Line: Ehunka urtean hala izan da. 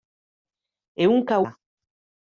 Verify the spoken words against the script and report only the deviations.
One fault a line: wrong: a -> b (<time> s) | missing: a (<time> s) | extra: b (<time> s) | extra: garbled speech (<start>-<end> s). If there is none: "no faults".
missing: urtean hala izan (1.4 s)